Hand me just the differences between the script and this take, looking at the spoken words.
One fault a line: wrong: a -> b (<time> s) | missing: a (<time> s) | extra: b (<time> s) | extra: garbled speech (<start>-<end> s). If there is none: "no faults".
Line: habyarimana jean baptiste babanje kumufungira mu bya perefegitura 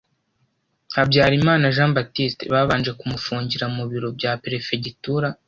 extra: biro (3.9 s)